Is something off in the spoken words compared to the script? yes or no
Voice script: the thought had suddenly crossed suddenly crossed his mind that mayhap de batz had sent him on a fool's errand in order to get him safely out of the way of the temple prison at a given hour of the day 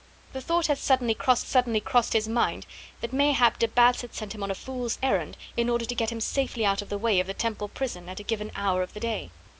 no